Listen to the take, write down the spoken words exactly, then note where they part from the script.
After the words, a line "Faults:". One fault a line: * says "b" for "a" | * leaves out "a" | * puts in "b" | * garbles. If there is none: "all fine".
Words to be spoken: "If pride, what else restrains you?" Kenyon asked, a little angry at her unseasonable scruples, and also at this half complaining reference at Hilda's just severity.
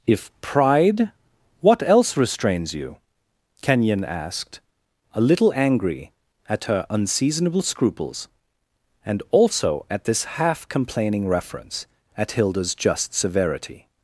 "If pride, what else restrains you?" Kenyon asked, a little angry at her unseasonable scruples, and also at this half complaining reference at Hilda's just severity.
Faults:
all fine